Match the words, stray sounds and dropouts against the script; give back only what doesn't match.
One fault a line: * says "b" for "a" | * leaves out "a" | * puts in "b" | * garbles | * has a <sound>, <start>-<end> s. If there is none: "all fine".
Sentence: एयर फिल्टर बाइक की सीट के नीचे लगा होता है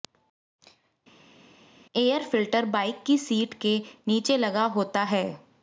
all fine